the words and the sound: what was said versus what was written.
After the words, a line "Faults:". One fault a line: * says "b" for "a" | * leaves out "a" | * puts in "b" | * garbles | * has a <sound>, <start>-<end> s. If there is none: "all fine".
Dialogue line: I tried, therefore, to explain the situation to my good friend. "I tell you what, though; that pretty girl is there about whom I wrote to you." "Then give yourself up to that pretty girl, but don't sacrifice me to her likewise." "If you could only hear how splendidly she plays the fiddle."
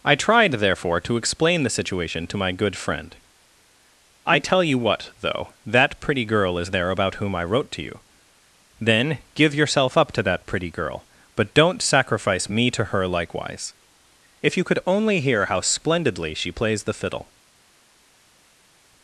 I tried, therefore, to explain the situation to my good friend. "I tell you what, though; that pretty girl is there about whom I wrote to you." "Then give yourself up to that pretty girl, but don't sacrifice me to her likewise." "If you could only hear how splendidly she plays the fiddle."
Faults:
all fine